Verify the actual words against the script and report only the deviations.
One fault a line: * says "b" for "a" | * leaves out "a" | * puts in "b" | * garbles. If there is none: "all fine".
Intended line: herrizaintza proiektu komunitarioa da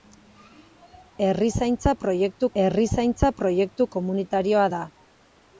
* puts in "herrizaintza proiektu"